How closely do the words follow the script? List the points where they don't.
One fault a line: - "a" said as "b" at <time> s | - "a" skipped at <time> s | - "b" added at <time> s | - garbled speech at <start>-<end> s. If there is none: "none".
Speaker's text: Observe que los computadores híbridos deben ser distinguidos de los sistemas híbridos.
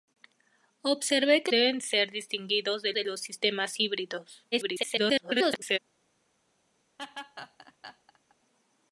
- "los computadores híbridos" skipped at 1.5 s
- "de" added at 2.9 s
- garbled speech at 4.5-5.8 s